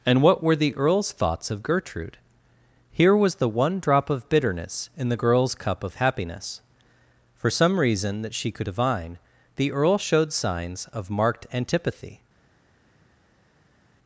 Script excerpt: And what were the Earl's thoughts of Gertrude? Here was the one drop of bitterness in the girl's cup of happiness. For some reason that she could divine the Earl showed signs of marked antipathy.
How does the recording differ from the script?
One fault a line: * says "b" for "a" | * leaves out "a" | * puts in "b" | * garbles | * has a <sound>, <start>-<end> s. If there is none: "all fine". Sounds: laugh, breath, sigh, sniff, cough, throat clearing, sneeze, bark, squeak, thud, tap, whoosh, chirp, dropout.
all fine